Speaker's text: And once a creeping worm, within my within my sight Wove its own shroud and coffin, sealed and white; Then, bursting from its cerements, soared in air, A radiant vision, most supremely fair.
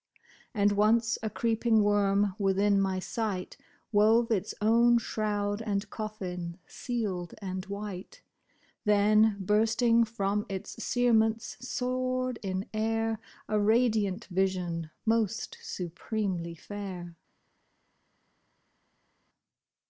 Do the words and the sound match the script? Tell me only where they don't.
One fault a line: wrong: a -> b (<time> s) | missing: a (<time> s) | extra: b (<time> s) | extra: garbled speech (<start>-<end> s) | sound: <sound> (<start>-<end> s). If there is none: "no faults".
missing: within my (3.0 s)